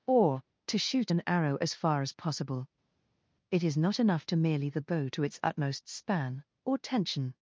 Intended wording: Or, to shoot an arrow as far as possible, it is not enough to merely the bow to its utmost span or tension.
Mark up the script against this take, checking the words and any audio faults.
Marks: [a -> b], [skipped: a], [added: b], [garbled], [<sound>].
Or, to shoot an arrow as far as possible, it is not enough to merely the bow to its utmost span or tension.